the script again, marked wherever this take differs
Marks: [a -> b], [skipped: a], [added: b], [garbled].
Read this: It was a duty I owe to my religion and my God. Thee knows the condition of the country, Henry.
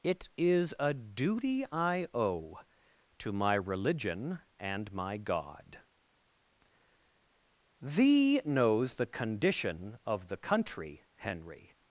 It [was -> is] a duty I owe to my religion and my God. Thee knows the condition of the country, Henry.